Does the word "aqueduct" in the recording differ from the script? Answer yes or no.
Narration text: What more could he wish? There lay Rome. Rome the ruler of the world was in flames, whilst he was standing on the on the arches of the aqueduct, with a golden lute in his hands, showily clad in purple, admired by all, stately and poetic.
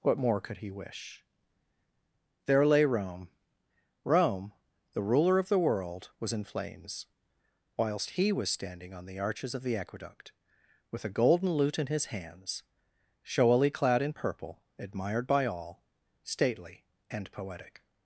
no